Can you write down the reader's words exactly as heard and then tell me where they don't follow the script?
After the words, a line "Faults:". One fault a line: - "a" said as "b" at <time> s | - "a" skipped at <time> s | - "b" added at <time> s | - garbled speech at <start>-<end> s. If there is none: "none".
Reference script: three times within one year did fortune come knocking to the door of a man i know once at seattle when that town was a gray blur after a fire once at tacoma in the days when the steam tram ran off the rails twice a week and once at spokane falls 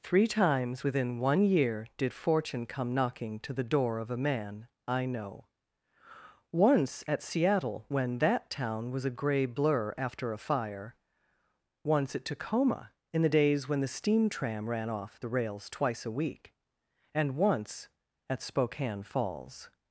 three times within one year did fortune come knocking to the door of a man i know once at seattle when that town was a gray blur after a fire once at tacoma in the days when the steam tram ran off the rails twice a week and once at spokane falls
Faults:
none